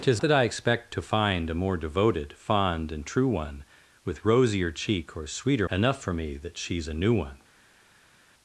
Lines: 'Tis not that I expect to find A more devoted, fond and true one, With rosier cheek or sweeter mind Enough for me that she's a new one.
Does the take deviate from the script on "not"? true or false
true